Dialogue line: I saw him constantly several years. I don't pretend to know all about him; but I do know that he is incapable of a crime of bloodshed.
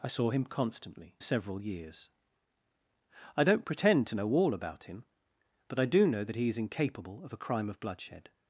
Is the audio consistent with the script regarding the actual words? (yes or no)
yes